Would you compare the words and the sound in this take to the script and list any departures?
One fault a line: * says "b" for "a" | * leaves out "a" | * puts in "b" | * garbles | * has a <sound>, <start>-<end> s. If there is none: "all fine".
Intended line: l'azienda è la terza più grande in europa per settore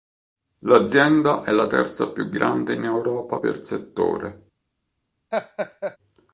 * has a laugh, 5.3-6.0 s